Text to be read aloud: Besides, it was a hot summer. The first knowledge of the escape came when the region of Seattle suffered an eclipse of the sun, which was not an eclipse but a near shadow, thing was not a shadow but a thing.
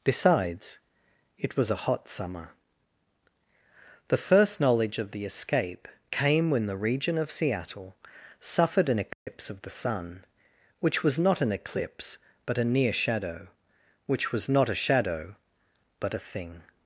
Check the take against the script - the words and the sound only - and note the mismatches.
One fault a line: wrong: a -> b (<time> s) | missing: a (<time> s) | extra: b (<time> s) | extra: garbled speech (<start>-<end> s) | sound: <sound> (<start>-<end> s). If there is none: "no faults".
sound: dropout (9.1-9.3 s)
wrong: thing -> which (14.1 s)